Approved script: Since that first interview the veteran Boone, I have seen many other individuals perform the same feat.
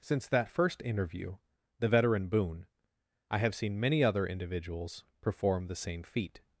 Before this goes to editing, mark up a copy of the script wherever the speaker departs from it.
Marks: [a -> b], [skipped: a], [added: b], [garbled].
Since that first interview the veteran Boone, I have seen many other individuals perform the same feat.